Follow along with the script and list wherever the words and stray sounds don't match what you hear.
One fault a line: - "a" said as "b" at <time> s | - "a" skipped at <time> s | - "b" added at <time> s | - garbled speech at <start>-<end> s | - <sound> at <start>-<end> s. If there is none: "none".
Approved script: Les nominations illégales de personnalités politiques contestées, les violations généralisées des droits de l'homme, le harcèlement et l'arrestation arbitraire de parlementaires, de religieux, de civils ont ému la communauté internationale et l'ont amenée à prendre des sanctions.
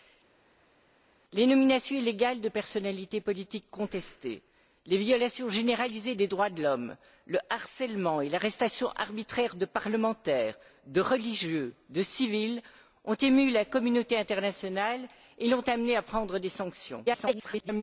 - garbled speech at 17.1-17.8 s